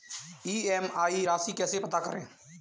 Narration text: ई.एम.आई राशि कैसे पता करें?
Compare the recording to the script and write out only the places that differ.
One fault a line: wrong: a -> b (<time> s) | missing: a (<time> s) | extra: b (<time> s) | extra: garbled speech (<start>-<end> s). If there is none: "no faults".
no faults